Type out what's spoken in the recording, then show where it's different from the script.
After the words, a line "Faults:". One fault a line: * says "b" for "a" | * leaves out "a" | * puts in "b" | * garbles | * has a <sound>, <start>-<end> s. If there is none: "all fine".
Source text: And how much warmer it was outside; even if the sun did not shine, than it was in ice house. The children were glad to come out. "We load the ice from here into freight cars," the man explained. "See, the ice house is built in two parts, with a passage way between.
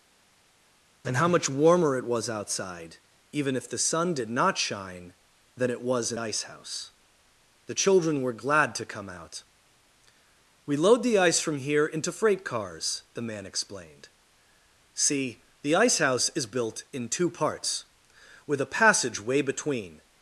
And how much warmer it was outside; even if the sun did not shine, than it was in ice house. The children were glad to come out. "We load the ice from here into freight cars," the man explained. "See, the ice house is built in two parts, with a passage way between.
Faults:
all fine